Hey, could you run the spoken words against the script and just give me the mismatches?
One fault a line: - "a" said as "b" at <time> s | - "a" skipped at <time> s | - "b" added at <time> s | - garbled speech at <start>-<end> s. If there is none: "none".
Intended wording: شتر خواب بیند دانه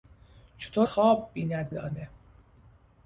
none